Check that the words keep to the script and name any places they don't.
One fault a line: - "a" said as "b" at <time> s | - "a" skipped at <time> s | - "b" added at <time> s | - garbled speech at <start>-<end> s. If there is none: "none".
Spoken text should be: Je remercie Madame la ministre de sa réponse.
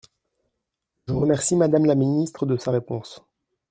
none